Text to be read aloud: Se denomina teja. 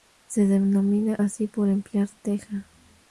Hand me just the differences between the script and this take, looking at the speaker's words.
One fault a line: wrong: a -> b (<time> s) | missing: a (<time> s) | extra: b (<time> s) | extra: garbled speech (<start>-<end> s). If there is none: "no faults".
extra: así por emplear (1.2 s)